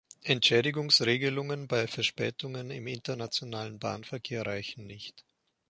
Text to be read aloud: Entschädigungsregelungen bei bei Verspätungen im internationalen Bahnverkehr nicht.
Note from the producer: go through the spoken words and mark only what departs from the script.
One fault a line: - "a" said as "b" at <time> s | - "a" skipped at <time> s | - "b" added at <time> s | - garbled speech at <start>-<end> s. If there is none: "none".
- "bei" skipped at 1.9 s
- "reichen" added at 4.4 s